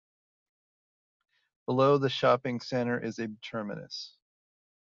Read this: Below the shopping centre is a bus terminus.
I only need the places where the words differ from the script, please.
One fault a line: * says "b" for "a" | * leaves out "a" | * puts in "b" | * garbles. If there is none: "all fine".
* leaves out "bus"